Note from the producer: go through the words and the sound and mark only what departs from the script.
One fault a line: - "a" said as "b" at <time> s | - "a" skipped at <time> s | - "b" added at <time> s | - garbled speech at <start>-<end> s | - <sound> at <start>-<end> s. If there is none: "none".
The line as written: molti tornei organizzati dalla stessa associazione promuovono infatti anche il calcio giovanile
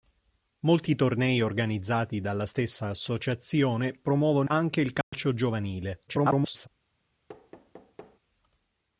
- "infatti" skipped at 4.5 s
- dropout at 5.0-5.1 s
- garbled speech at 6.1-6.7 s
- thud at 7.3-8.2 s